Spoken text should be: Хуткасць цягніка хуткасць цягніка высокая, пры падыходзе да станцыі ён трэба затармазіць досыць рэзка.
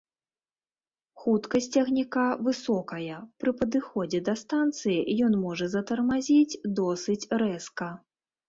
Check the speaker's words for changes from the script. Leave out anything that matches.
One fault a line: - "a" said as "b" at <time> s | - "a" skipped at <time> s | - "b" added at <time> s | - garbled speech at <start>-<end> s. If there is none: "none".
- "хуткасць цягніка" skipped at 2.2 s
- "трэба" said as "можа" at 5.5 s